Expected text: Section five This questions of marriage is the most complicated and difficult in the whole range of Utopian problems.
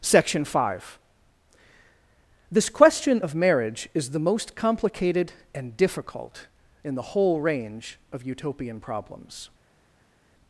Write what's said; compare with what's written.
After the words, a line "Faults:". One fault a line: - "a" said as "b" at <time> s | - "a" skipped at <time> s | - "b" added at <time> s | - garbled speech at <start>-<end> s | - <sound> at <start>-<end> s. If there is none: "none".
Section five This question of marriage is the most complicated and difficult in the whole range of Utopian problems.
Faults:
- "questions" said as "question" at 2.7 s